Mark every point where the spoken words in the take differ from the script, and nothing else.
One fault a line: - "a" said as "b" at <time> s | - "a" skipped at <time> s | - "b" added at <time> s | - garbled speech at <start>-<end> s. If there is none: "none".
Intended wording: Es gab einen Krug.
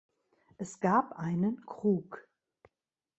none